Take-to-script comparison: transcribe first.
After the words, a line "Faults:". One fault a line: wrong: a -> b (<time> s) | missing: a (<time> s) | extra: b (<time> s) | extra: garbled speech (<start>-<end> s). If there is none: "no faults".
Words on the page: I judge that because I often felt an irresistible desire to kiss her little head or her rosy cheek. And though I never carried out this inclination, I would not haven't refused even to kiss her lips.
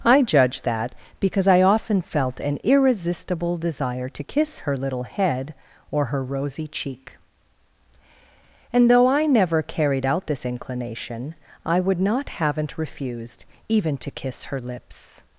I judge that because I often felt an irresistible desire to kiss her little head or her rosy cheek. And though I never carried out this inclination, I would not haven't refused even to kiss her lips.
Faults:
no faults